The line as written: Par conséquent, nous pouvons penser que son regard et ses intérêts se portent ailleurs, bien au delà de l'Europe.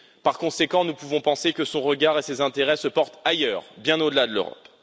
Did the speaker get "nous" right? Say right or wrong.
right